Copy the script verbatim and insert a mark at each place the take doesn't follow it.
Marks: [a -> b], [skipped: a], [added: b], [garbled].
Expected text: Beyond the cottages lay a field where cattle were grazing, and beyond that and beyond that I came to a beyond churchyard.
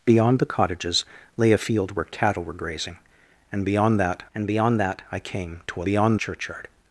Beyond the cottages lay a field where cattle were grazing, and beyond that and beyond that I came to a beyond churchyard.